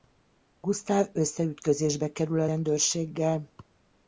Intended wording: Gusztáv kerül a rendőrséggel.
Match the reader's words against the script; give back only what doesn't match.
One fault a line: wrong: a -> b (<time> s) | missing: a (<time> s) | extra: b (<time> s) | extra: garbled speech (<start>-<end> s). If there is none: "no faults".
extra: összeütközésbe (1.1 s)